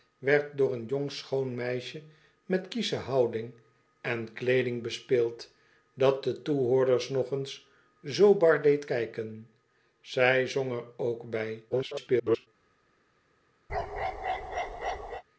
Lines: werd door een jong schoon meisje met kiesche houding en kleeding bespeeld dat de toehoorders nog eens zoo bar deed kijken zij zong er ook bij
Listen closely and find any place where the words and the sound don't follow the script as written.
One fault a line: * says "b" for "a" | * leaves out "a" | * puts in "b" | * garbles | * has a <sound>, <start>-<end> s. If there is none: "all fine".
* garbles
* has a bark, 13.7-15.2 s